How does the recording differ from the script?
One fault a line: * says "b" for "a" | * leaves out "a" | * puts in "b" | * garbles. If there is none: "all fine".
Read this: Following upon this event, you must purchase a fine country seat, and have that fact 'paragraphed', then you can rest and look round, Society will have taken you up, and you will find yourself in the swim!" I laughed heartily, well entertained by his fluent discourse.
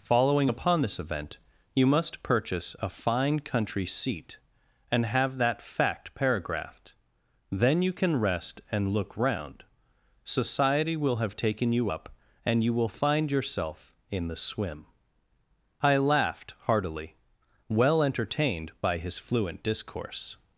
all fine